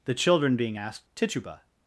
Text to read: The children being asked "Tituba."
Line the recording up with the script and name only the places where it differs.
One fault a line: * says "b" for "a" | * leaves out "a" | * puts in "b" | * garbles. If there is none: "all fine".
all fine